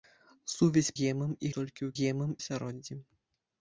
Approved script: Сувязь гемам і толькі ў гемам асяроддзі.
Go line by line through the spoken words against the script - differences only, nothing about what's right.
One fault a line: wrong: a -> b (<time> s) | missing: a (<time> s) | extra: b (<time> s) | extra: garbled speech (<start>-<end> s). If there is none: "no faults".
no faults